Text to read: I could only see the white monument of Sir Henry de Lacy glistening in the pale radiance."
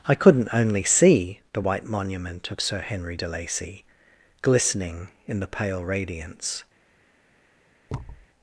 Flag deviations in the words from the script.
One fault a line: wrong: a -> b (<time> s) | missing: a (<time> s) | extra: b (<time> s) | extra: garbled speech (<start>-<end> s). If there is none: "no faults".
wrong: could -> couldn't (0.1 s)